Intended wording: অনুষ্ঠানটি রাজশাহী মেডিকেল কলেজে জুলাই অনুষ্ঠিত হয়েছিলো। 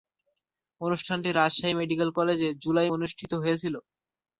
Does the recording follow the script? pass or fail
pass